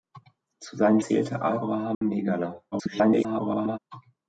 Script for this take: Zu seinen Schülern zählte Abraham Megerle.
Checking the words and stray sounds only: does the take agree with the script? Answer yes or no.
no